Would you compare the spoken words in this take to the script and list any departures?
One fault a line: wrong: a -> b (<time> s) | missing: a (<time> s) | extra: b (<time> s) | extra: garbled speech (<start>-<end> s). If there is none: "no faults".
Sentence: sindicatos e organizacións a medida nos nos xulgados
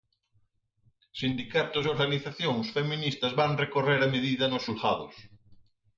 extra: feministas van recorrer (2.8 s)
missing: nos (4.7 s)